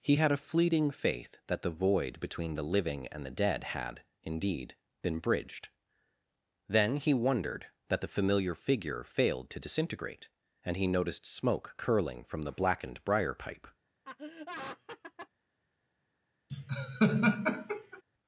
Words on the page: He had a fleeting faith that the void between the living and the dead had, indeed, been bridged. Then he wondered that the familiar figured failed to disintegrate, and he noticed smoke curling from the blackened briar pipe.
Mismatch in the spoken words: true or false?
true